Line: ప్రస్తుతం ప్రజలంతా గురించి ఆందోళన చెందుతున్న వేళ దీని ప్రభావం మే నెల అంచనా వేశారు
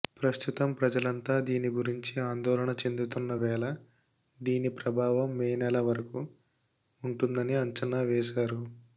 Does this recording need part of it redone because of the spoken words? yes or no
yes